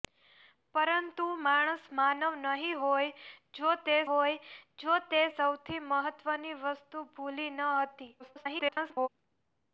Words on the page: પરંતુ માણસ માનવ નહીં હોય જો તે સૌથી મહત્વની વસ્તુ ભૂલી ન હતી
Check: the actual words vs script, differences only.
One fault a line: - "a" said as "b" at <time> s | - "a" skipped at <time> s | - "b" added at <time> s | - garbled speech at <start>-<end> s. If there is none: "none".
- "હોય જો તે" added at 4.1 s
- garbled speech at 8.2-9.1 s